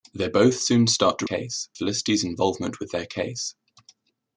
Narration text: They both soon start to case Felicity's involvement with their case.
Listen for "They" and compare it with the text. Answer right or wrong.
right